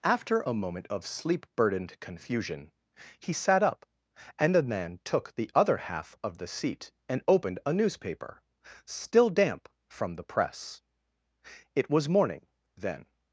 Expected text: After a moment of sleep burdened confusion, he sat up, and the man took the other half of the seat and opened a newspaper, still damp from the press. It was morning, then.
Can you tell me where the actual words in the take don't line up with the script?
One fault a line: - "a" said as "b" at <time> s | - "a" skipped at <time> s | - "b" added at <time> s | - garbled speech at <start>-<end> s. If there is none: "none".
none